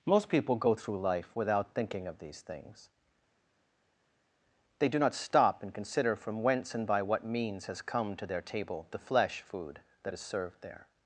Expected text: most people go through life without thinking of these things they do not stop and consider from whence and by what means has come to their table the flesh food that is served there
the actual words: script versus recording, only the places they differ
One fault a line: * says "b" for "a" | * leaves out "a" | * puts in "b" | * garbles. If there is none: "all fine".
all fine